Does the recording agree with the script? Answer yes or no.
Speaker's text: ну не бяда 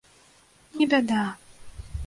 yes